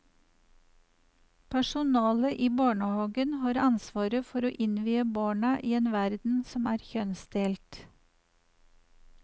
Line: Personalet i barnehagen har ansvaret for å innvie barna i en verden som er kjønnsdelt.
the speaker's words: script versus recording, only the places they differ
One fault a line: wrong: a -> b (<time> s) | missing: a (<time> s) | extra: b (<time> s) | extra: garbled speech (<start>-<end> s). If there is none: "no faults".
no faults